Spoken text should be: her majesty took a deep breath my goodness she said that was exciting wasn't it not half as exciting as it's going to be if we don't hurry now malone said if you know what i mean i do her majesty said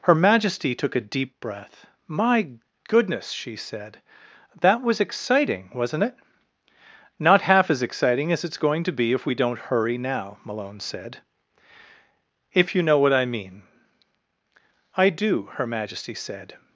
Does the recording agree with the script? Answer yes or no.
yes